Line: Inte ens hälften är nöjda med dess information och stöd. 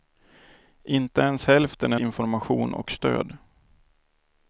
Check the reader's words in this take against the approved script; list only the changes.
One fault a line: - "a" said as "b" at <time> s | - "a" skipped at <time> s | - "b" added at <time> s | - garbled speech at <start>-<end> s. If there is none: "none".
- "nöjda med dess" skipped at 2.0 s